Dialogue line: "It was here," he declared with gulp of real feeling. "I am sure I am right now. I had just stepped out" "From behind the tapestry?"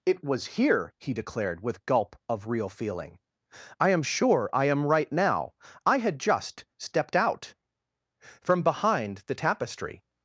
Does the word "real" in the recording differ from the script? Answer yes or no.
no